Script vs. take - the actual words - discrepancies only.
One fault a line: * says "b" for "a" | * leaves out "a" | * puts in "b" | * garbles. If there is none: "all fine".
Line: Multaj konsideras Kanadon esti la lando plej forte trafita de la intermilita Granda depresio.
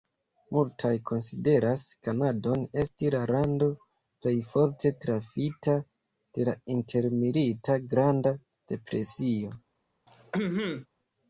all fine